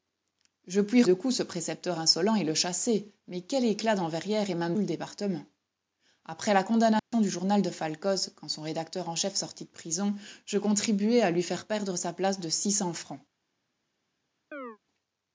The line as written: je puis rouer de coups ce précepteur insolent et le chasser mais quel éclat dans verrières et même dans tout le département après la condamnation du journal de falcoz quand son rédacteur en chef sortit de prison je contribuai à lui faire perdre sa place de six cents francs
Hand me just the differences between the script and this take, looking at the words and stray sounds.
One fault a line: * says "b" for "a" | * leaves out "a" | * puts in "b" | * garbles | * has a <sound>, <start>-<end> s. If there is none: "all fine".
* leaves out "rouer"
* leaves out "dans tout"
* has a dropout, 7.0-7.1 s
* has a chirp, 14.5-14.8 s